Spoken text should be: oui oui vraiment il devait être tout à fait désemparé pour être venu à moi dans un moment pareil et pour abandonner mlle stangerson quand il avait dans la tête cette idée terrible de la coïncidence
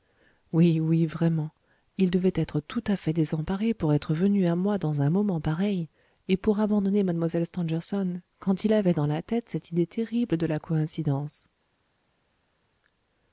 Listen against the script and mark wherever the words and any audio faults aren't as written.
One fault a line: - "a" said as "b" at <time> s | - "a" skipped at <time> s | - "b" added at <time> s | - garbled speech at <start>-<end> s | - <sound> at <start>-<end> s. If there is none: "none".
none